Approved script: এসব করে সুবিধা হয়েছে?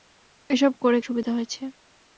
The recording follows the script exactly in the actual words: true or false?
true